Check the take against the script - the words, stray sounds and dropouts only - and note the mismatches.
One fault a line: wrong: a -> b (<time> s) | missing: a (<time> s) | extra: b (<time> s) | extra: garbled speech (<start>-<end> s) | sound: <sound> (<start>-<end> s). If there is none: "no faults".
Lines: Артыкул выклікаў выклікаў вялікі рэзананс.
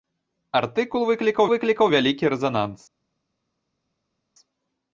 no faults